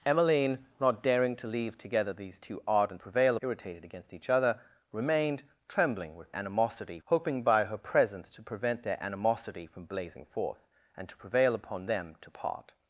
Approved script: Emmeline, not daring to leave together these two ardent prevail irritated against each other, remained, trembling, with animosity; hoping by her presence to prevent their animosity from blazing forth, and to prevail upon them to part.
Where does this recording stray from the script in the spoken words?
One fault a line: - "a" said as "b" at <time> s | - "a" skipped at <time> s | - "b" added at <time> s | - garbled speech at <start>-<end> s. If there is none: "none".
none